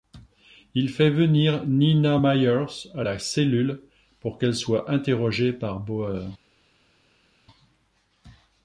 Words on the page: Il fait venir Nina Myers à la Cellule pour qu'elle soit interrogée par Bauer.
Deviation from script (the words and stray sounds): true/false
false